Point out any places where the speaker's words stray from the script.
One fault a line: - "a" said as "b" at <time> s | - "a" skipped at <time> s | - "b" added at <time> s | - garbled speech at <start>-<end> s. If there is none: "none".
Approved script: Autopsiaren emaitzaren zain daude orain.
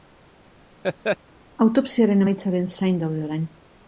none